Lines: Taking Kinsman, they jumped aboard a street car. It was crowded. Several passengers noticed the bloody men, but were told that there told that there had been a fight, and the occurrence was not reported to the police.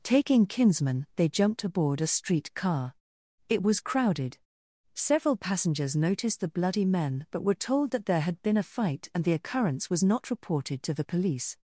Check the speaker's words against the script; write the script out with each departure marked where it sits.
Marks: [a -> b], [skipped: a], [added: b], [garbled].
Taking Kinsman, they jumped aboard a street car. It was crowded. Several passengers noticed the bloody men, but were told that there [skipped: told that there] had been a fight, and the occurrence was not reported to the police.